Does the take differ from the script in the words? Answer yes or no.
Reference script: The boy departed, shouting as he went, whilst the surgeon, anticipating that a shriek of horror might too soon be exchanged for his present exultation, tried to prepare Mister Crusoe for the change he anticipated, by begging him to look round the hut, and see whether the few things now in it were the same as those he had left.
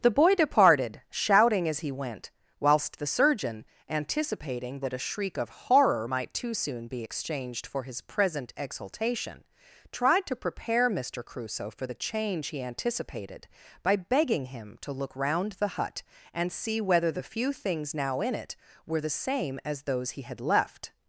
no